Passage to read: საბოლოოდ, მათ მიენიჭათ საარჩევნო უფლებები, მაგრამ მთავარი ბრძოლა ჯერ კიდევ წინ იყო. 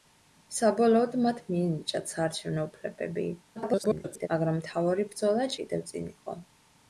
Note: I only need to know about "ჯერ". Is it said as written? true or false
false